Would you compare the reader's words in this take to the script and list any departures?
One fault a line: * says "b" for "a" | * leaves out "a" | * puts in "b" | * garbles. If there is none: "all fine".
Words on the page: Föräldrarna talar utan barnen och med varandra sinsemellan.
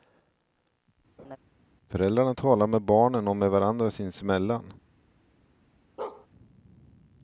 * says "med" for "utan"